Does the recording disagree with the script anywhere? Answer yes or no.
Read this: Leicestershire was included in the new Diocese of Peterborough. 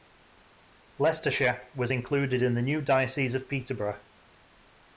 no